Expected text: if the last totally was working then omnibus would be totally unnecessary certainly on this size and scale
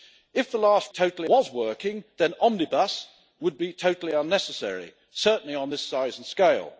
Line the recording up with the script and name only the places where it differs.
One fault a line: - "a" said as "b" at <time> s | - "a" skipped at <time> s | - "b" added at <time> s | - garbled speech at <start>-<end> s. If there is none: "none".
none